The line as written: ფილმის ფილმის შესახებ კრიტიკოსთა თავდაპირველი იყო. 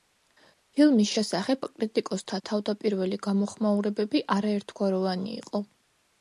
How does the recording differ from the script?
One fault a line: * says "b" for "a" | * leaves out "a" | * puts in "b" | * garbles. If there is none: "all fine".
* leaves out "ფილმის"
* puts in "გამოხმაურებები არაერთგვაროვანი"